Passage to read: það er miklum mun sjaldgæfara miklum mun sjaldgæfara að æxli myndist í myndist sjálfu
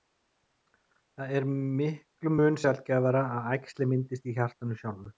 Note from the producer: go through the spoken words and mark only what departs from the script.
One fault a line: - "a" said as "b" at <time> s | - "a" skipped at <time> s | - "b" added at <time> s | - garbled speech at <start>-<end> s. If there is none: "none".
- "miklum mun sjaldgæfara" skipped at 3.2 s
- "myndist" said as "hjartanu" at 4.4 s